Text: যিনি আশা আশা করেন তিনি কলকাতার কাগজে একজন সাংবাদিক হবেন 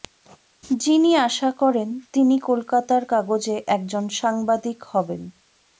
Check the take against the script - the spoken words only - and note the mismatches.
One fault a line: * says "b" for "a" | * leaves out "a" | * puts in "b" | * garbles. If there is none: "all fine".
* leaves out "আশা"